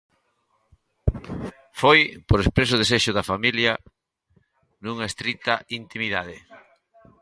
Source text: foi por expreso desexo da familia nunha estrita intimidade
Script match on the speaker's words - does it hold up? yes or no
yes